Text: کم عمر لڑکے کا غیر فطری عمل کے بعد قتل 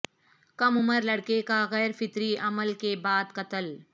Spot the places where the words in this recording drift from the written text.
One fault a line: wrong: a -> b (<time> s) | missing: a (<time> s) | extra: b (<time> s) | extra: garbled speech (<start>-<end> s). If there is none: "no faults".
no faults